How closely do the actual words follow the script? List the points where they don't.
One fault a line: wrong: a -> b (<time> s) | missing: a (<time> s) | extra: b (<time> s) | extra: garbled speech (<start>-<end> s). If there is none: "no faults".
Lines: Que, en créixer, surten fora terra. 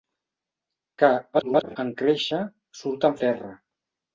extra: garbled speech (1.3-1.8 s)
missing: fora (3.2 s)